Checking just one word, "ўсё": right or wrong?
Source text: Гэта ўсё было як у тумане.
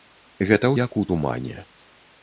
wrong